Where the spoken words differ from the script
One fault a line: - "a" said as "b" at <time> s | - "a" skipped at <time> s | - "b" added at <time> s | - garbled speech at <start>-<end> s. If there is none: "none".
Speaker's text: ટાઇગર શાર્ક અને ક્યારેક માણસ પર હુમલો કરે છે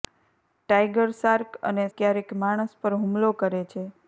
none